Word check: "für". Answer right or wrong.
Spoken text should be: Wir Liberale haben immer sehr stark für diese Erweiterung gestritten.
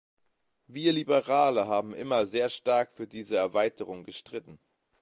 right